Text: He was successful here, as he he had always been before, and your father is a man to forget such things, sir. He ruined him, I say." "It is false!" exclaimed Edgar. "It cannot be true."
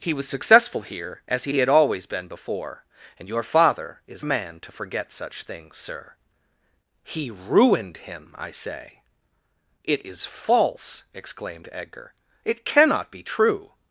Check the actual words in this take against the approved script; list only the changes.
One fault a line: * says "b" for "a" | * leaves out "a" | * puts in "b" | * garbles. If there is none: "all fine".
all fine